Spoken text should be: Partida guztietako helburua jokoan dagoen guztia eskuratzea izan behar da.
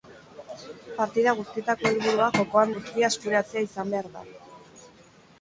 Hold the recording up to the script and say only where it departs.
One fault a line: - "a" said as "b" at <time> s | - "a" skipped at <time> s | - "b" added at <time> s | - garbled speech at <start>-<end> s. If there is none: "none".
- "dagoen" skipped at 2.7 s